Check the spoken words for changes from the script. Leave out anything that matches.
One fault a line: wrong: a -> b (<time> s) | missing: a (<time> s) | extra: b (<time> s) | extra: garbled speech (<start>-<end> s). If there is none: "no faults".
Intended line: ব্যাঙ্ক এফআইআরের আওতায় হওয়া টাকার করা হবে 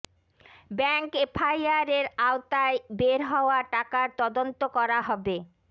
extra: বের (3.0 s)
extra: তদন্ত (4.2 s)